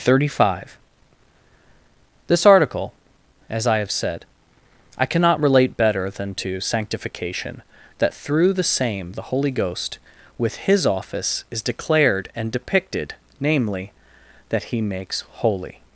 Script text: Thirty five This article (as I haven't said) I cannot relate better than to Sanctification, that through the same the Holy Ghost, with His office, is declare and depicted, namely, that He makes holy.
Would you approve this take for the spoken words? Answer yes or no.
no